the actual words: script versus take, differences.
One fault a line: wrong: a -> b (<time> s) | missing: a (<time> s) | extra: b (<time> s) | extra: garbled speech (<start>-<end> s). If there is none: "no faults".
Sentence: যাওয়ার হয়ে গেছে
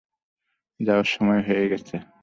extra: সময় (1.1 s)